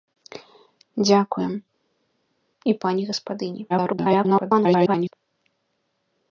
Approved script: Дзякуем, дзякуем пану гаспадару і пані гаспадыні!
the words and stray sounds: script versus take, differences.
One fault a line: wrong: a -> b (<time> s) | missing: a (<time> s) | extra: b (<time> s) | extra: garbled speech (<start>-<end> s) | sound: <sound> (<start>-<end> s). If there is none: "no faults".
missing: дзякуем пану гаспадару (1.5 s)
extra: garbled speech (3.7-5.1 s)